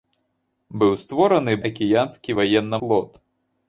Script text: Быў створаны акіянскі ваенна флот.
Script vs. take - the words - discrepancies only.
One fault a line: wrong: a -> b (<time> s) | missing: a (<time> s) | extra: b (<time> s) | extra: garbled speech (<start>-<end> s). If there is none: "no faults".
no faults